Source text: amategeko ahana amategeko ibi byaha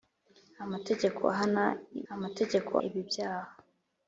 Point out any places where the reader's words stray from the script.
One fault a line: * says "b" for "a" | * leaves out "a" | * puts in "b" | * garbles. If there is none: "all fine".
all fine